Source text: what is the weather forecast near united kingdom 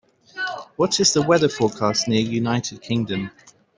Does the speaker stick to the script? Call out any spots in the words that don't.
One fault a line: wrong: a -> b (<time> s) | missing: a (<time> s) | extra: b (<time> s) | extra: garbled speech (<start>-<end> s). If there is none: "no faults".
no faults